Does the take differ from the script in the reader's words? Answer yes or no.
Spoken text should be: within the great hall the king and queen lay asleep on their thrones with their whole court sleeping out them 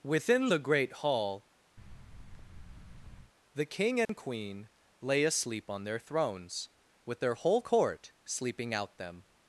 no